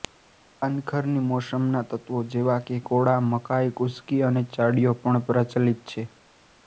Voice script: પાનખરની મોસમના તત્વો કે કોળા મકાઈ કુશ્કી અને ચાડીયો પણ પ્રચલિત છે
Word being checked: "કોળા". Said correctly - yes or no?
yes